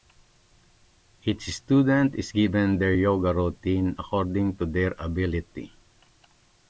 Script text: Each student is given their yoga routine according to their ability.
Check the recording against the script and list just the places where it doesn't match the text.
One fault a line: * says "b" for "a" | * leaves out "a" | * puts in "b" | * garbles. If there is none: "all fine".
all fine